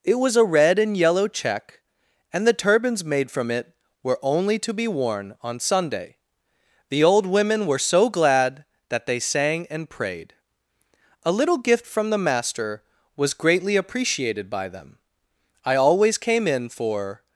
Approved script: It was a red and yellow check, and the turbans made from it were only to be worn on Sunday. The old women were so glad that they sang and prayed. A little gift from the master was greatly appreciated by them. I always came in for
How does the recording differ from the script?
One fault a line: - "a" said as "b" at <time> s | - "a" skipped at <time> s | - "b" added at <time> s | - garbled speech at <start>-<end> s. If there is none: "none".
none